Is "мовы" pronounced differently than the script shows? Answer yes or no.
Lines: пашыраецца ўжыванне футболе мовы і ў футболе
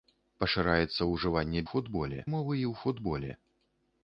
no